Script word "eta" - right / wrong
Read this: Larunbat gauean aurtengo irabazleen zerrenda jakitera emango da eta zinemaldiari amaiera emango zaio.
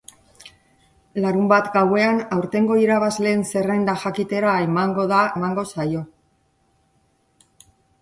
wrong